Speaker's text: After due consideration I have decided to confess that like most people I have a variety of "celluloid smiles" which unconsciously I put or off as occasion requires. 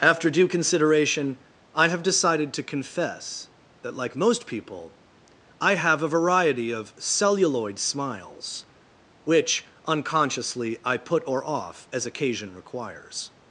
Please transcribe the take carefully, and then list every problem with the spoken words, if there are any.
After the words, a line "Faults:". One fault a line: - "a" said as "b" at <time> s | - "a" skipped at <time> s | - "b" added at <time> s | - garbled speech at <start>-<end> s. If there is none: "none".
After due consideration I have decided to confess that like most people I have a variety of "celluloid smiles" which unconsciously I put or off as occasion requires.
Faults:
none